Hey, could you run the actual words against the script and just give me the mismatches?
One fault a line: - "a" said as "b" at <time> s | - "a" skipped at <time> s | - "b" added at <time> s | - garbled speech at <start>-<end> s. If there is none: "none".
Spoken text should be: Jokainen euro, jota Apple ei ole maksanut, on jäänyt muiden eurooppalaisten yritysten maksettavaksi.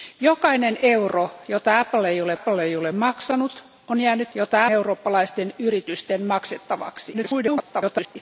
- "Apple ei ole" added at 2.3 s
- "muiden" said as "jota" at 4.3 s
- garbled speech at 7.1-8.2 s